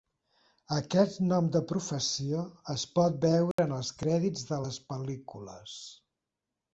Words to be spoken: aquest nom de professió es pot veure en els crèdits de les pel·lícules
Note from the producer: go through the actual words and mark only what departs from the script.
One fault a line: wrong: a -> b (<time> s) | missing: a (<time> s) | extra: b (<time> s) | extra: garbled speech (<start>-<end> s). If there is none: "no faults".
no faults